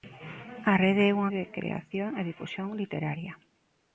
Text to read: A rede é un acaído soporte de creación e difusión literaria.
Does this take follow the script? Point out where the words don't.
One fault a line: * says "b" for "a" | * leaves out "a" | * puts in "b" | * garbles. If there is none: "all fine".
* leaves out "acaído soporte"